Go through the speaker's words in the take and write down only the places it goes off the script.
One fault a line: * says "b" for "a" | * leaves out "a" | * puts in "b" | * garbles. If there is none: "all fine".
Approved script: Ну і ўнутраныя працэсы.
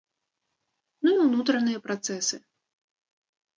all fine